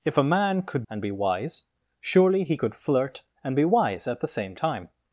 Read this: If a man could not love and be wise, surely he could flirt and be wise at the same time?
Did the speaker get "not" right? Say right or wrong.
wrong